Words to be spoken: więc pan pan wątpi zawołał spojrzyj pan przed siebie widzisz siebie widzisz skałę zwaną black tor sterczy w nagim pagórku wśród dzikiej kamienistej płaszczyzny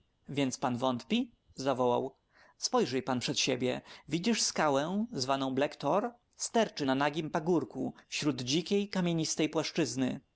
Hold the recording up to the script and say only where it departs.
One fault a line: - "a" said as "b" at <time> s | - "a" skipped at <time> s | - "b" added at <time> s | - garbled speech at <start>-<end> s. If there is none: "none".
- "pan" skipped at 0.8 s
- "siebie widzisz" skipped at 4.4 s
- "w" said as "na" at 6.8 s